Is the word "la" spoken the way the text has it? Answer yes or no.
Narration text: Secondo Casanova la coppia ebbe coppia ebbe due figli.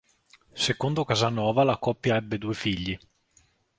yes